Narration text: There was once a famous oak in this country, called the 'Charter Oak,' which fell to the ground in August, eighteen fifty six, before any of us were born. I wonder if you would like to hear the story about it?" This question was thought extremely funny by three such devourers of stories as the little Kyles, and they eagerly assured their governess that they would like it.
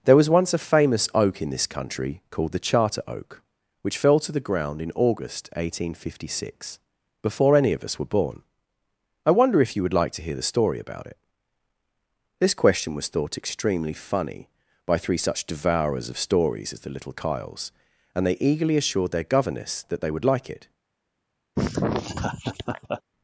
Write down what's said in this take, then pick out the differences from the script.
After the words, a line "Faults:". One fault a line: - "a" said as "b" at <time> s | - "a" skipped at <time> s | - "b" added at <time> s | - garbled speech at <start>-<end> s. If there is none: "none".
There was once a famous oak in this country, called the 'Charter Oak,' which fell to the ground in August, eighteen fifty six, before any of us were born. I wonder if you would like to hear the story about it?" This question was thought extremely funny by three such devourers of stories as the little Kyles, and they eagerly assured their governess that they would like it.
Faults:
none